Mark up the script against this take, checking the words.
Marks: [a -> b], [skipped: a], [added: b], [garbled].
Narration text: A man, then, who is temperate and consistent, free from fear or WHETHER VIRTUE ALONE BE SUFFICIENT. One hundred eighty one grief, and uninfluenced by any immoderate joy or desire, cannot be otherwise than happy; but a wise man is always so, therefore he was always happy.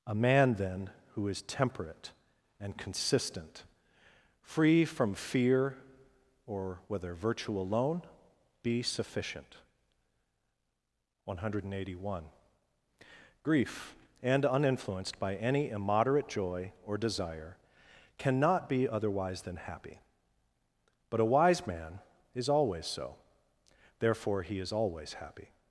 A man, then, who is temperate and consistent, free from fear or WHETHER VIRTUE ALONE BE SUFFICIENT. One hundred eighty one grief, and uninfluenced by any immoderate joy or desire, cannot be otherwise than happy; but a wise man is always so, therefore he [was -> is] always happy.